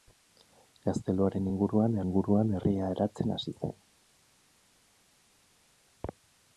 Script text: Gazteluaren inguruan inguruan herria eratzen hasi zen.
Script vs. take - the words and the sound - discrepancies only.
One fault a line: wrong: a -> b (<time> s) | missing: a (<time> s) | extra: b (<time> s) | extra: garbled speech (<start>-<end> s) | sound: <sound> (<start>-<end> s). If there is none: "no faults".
no faults